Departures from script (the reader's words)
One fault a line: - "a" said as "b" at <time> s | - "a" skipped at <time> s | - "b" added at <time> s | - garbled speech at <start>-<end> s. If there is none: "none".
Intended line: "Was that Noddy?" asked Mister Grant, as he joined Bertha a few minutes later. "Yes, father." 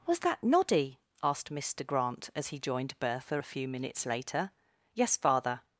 none